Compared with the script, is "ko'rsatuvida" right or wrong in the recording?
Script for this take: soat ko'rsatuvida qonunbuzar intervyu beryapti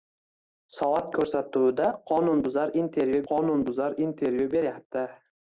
right